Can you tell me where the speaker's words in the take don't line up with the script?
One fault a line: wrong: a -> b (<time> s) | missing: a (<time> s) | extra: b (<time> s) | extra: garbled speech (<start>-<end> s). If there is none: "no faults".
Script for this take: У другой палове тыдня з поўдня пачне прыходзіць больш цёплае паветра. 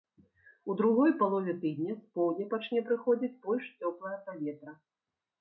no faults